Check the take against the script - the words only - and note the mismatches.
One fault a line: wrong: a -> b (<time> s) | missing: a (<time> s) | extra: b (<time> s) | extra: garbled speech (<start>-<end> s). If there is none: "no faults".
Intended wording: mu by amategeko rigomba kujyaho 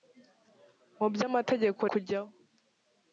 missing: rigomba (1.8 s)